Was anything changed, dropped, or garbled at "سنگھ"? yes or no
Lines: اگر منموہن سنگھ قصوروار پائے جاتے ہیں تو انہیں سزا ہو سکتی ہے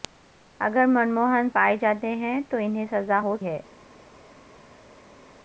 yes